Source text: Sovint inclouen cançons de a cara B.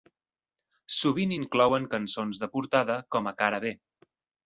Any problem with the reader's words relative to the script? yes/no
yes